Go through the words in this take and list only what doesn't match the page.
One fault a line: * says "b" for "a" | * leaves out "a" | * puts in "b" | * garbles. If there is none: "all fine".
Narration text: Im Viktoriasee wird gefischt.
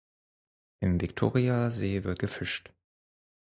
all fine